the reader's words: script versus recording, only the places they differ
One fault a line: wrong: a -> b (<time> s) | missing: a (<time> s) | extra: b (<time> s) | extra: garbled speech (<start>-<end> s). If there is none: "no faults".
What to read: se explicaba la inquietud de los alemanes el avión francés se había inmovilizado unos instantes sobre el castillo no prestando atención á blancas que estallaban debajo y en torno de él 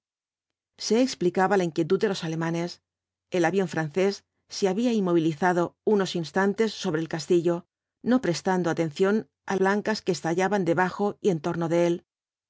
no faults